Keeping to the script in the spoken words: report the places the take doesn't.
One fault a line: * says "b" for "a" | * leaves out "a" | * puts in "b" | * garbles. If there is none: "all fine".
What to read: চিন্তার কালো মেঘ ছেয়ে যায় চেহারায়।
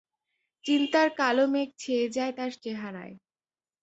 * puts in "তার"